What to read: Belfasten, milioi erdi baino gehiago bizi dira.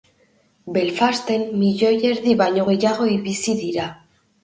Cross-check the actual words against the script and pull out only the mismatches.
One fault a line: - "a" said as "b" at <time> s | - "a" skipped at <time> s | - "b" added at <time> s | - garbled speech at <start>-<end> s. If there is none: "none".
none